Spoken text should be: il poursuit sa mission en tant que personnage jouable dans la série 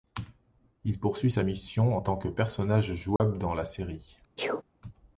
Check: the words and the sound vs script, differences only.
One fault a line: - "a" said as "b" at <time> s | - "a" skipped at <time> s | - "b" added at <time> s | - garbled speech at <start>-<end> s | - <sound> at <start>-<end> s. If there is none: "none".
- dropout at 3.2-3.2 s
- sneeze at 4.4-4.6 s